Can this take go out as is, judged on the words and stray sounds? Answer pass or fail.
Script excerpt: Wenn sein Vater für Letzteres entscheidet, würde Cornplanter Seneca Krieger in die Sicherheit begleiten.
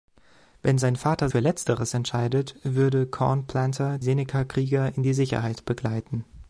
pass